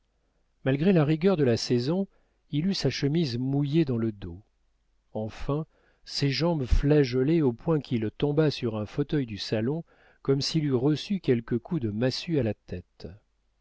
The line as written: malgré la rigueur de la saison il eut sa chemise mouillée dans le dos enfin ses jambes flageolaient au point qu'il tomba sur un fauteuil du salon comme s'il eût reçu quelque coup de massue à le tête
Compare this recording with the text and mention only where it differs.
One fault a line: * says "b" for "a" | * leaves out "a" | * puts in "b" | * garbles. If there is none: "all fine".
* says "la" for "le"